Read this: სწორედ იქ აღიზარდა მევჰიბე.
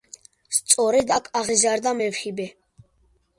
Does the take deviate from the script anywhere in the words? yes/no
yes